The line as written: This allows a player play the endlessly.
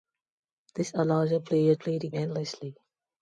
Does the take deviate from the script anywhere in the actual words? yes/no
no